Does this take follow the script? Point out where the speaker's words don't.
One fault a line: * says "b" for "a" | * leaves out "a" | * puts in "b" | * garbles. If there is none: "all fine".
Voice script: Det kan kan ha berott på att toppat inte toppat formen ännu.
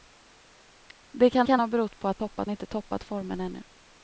all fine